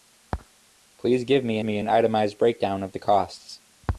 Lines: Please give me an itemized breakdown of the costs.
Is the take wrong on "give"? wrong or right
right